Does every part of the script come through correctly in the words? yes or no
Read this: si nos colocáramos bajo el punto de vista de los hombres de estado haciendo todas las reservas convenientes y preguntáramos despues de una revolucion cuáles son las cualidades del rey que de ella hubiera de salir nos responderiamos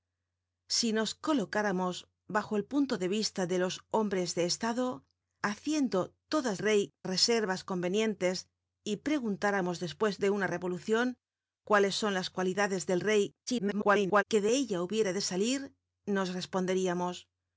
no